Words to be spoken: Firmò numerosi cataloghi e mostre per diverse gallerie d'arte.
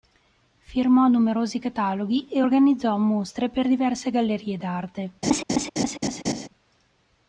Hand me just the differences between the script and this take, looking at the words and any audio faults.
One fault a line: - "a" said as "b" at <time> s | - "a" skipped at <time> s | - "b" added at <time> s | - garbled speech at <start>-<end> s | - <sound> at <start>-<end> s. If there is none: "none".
- "organizzò" added at 2.4 s
- laugh at 5.2-6.5 s